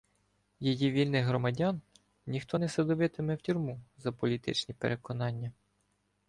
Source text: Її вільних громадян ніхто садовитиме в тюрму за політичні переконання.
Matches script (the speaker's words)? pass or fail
fail